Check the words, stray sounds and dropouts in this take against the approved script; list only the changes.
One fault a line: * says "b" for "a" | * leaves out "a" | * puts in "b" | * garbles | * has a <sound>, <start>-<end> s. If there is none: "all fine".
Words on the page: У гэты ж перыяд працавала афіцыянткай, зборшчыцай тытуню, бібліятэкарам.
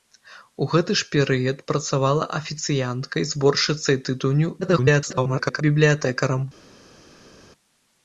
* garbles